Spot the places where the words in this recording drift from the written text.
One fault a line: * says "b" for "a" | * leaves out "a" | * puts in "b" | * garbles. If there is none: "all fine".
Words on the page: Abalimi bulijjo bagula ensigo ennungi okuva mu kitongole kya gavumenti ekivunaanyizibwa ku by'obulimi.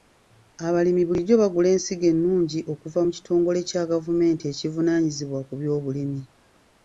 all fine